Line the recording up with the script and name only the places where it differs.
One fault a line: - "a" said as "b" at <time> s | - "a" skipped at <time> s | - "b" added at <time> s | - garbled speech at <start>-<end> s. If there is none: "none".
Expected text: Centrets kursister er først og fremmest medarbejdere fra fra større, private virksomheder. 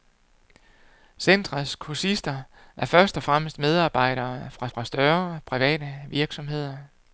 none